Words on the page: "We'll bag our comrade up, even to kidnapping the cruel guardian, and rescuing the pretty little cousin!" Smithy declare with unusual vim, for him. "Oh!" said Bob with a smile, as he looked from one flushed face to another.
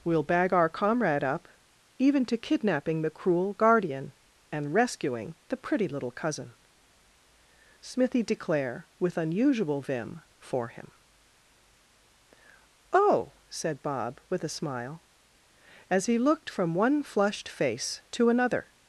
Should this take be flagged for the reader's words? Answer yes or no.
no